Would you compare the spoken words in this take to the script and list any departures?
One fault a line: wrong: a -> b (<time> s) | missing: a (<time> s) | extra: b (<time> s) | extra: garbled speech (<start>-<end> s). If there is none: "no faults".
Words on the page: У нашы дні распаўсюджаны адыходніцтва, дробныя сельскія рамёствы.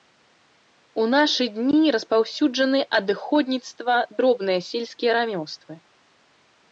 no faults